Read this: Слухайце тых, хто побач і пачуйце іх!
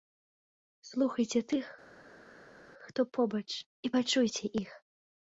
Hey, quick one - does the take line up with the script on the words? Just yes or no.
yes